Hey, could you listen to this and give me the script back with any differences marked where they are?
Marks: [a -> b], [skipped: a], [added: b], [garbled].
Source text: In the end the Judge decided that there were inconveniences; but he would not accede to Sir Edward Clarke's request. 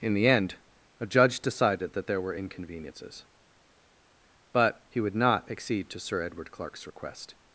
In the end [the -> a] Judge decided that there were inconveniences; but he would not accede to Sir Edward Clarke's request.